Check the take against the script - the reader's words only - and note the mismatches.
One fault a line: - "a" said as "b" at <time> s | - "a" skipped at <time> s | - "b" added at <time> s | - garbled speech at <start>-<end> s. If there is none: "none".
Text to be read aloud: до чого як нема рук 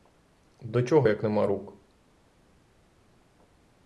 none